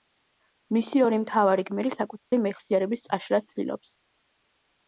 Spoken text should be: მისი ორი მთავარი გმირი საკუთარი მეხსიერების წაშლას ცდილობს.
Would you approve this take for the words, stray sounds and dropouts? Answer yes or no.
no